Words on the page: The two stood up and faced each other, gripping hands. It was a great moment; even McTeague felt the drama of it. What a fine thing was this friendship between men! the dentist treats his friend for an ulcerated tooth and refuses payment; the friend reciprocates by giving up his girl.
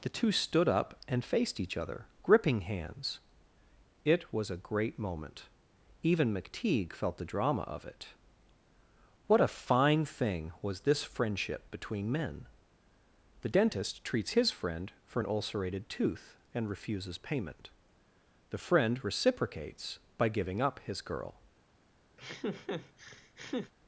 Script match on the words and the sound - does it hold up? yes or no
no